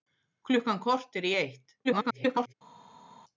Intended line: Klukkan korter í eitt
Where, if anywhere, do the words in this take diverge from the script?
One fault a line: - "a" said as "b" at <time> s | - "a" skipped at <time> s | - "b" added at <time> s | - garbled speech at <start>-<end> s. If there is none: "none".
- garbled speech at 1.8-2.5 s